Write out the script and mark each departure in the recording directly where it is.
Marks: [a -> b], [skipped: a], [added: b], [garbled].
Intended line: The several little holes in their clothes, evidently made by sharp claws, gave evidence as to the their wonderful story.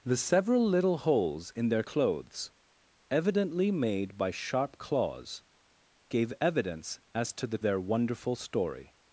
The several little holes in their clothes, evidently made by sharp claws, gave evidence as to the their wonderful story.